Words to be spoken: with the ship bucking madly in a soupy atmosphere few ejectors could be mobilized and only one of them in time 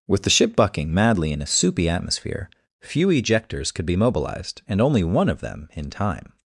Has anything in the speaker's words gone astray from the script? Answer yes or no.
no